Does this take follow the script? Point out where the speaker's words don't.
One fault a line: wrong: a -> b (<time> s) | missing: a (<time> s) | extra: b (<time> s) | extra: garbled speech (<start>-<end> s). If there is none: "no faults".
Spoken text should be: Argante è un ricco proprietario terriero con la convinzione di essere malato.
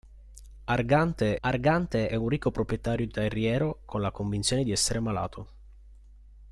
extra: argante (1.4 s)